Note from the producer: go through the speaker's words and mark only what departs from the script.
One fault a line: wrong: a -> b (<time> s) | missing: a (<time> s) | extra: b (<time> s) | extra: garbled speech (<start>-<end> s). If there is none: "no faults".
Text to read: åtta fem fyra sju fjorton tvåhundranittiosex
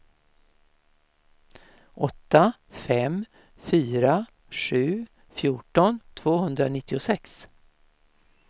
no faults